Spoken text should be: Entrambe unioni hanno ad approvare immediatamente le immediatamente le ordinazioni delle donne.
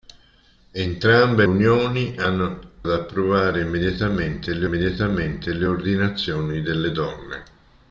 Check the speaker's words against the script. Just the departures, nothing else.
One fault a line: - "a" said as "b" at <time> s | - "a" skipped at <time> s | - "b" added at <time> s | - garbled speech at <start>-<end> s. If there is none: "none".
none